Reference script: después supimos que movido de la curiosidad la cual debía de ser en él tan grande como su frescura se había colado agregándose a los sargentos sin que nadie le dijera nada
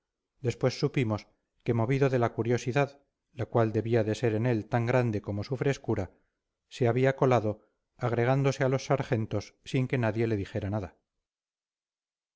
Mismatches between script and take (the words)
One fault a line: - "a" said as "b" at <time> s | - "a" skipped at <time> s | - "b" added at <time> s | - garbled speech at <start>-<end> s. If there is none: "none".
none